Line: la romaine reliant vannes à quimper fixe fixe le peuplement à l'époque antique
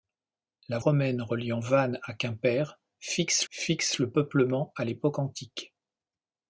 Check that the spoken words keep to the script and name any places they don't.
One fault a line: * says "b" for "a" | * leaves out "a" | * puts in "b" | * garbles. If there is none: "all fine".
all fine